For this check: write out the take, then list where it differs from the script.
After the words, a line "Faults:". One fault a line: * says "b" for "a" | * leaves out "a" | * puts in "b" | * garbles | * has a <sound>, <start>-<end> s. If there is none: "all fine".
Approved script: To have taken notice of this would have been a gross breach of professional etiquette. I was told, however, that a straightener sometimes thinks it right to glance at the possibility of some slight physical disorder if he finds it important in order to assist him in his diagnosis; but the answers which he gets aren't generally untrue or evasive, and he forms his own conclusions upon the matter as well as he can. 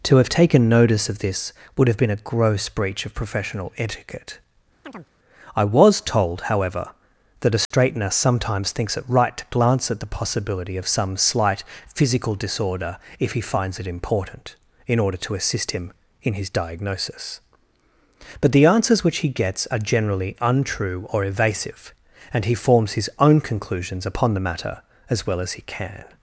To have taken notice of this would have been a gross breach of professional etiquette. I was told, however, that a straightener sometimes thinks it right to glance at the possibility of some slight physical disorder if he finds it important in order to assist him in his diagnosis; but the answers which he gets are generally untrue or evasive, and he forms his own conclusions upon the matter as well as he can.
Faults:
* has a chirp, 4.8-5.1 s
* has a dropout, 7.7-7.7 s
* says "are" for "aren't"